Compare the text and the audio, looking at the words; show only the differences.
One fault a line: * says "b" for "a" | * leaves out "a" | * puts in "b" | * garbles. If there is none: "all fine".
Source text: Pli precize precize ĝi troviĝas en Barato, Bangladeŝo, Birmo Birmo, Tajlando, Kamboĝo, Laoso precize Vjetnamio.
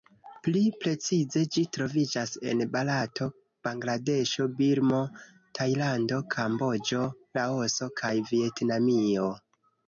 * leaves out "precize"
* leaves out "Birmo"
* says "kaj" for "precize"